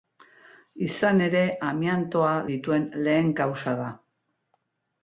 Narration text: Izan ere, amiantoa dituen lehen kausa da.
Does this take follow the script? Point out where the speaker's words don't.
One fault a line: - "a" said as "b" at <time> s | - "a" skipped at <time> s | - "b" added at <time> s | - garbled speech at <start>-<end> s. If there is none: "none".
none